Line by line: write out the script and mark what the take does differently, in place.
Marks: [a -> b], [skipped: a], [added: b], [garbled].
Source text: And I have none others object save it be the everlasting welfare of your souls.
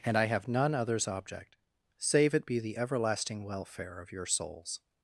And I have none others object save it be the everlasting welfare of your souls.